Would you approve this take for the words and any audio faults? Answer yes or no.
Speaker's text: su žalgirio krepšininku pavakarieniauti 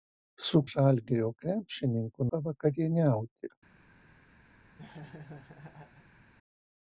no